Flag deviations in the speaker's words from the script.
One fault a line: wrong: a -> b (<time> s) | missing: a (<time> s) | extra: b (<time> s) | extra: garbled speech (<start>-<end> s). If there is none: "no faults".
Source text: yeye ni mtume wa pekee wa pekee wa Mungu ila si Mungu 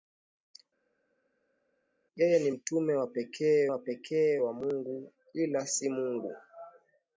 no faults